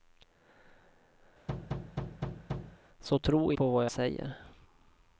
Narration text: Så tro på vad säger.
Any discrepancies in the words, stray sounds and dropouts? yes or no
yes